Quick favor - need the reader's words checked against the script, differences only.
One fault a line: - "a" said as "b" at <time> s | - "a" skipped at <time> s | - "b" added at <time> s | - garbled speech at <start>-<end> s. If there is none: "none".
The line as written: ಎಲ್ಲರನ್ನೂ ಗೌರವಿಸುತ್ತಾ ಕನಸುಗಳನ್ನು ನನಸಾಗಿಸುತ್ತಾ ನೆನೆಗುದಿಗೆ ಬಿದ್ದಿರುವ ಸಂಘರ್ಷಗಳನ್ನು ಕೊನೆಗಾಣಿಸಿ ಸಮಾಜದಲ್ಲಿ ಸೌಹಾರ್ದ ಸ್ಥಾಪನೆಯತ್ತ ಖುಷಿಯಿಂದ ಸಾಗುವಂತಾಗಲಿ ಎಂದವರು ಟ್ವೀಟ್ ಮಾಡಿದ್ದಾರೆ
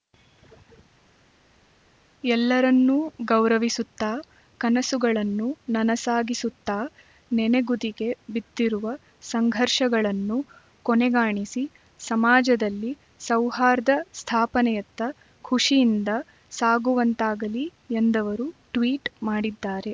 none